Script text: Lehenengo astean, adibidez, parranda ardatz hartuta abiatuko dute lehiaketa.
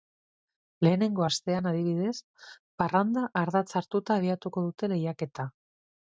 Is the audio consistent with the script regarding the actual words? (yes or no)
yes